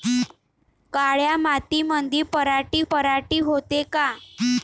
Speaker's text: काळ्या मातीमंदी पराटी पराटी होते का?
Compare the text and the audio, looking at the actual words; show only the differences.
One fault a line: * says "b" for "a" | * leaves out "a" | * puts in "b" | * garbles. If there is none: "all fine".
all fine